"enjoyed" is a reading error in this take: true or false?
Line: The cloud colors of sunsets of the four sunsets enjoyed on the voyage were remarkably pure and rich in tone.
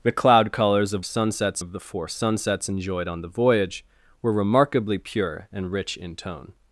false